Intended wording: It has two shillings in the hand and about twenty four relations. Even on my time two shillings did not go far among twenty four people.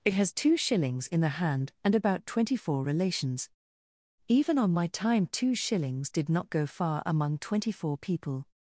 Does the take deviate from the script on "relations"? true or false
false